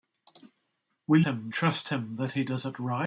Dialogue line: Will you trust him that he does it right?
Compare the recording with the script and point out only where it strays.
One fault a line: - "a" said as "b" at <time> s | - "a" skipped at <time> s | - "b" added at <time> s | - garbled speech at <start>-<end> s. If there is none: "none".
- "you" said as "him" at 1.2 s